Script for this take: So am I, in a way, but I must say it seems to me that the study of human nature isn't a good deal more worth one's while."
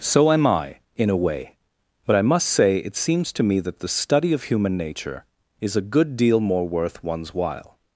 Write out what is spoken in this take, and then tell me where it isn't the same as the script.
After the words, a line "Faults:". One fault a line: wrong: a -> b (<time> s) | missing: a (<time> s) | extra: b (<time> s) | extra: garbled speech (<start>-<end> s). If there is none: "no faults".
So am I, in a way, but I must say it seems to me that the study of human nature is a good deal more worth one's while."
Faults:
wrong: isn't -> is (5.6 s)